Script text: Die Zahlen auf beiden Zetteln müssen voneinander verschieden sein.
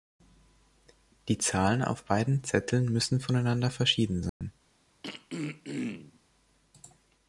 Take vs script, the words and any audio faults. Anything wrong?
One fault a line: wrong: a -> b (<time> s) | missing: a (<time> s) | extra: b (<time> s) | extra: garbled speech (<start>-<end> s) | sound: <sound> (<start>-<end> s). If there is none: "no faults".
sound: dropout (4.3-4.4 s)
sound: throat clearing (5.0-6.2 s)